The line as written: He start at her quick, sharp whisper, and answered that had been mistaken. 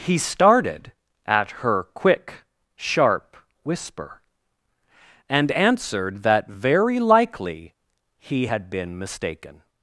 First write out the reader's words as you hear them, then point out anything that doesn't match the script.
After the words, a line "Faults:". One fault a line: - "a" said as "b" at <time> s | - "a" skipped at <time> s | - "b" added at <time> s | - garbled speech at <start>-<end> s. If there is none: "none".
He started at her quick, sharp whisper, and answered that very likely he had been mistaken.
Faults:
- "start" said as "started" at 0.2 s
- "very likely he" added at 6.5 s